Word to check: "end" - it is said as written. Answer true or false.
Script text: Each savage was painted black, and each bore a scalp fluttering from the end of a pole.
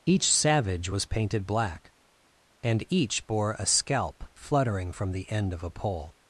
true